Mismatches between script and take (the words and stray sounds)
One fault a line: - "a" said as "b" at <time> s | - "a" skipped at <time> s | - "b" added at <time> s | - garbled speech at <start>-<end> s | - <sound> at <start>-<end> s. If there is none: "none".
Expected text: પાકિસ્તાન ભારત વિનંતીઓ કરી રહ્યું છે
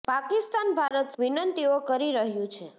- dropout at 0.9-0.9 s